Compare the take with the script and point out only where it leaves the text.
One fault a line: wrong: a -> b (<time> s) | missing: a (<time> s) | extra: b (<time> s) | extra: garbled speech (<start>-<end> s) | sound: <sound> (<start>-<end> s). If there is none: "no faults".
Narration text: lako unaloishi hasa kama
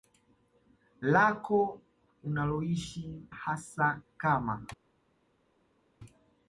no faults